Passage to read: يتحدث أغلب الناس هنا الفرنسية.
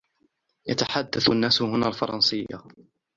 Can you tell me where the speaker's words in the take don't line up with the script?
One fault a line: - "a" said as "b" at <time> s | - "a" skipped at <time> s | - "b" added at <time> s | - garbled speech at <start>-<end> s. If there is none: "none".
- "أغلب" skipped at 1.3 s